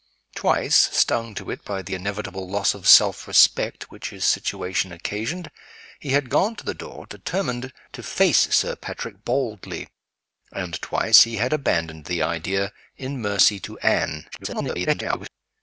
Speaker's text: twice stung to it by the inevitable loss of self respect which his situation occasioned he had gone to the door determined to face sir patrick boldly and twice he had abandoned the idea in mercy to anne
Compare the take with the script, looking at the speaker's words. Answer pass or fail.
fail